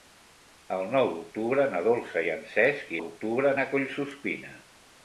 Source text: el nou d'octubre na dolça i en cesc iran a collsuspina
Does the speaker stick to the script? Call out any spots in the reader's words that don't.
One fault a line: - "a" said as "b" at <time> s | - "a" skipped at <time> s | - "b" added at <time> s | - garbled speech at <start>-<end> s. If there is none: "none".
- "iran" said as "d'octubre" at 3.0 s